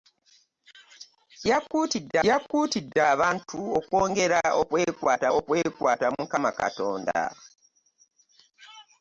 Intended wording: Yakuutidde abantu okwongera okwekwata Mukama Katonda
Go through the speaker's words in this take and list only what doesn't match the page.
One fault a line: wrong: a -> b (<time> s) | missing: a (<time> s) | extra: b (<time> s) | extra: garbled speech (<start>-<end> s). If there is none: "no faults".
extra: yakuutidde (2.3 s)
extra: okwekwata (5.4 s)